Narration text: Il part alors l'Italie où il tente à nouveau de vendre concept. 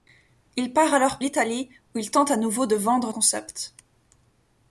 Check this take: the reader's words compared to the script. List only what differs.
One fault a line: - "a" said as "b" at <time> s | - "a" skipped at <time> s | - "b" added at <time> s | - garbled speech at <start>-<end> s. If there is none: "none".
none